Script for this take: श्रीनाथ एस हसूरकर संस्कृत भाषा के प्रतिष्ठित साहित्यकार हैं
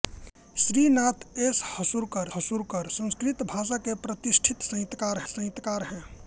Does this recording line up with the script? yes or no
no